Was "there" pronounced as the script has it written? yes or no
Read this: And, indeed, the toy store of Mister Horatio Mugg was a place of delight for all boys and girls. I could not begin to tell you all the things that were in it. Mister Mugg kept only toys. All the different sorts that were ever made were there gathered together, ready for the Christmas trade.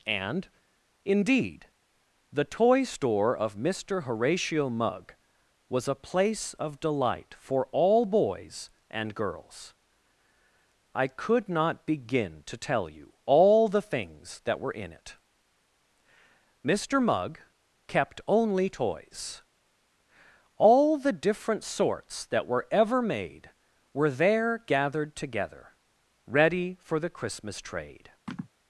yes